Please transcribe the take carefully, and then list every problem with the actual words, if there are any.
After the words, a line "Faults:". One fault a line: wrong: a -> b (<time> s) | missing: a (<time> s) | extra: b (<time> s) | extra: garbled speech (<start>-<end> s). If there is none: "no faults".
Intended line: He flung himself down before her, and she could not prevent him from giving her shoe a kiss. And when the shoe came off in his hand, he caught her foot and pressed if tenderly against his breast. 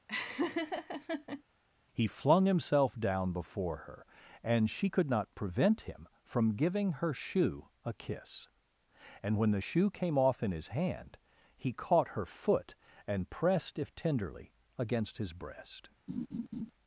He flung himself down before her, and she could not prevent him from giving her shoe a kiss. And when the shoe came off in his hand, he caught her foot and pressed if tenderly against his breast.
Faults:
no faults